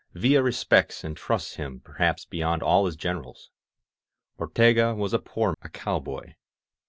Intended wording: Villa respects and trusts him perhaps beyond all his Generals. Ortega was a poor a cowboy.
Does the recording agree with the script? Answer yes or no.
yes